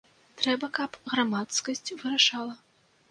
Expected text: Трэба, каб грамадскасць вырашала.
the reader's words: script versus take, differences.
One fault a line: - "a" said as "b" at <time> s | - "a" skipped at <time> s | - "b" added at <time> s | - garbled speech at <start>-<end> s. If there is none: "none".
none